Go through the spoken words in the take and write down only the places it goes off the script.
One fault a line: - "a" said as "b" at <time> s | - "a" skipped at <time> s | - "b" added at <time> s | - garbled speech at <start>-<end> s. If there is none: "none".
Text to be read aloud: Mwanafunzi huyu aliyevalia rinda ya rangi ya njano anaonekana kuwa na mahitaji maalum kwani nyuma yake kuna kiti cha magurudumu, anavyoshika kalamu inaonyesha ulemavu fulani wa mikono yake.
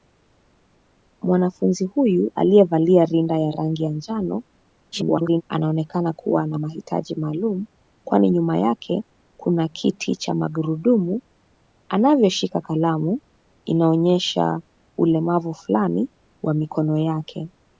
- garbled speech at 4.9-5.4 s